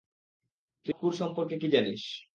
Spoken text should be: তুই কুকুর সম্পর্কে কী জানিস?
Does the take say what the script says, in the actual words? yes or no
yes